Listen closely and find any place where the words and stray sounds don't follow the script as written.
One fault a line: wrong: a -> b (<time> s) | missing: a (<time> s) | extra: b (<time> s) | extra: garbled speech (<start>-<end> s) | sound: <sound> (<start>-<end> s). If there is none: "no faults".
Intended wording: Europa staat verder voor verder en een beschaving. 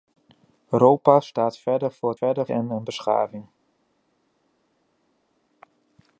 no faults